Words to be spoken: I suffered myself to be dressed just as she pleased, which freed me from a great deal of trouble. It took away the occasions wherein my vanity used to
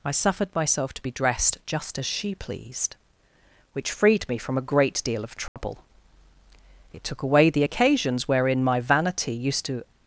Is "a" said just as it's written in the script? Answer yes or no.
yes